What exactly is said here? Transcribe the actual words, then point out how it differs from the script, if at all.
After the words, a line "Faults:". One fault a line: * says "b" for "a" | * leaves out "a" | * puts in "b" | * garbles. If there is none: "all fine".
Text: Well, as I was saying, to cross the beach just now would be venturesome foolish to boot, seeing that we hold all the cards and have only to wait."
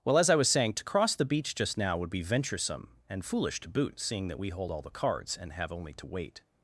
Well, as I was saying, to cross the beach just now would be venturesome and foolish to boot, seeing that we hold all the cards and have only to wait."
Faults:
* puts in "and"